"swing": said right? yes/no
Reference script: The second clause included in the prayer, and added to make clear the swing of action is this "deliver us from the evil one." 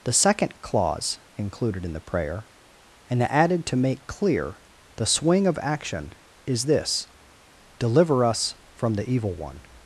yes